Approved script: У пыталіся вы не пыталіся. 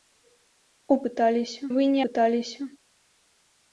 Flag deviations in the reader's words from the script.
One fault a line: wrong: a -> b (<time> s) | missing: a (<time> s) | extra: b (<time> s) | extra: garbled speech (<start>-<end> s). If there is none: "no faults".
no faults